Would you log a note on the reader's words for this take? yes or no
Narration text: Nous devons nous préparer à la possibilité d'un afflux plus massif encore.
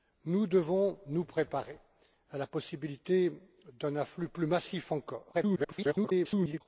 yes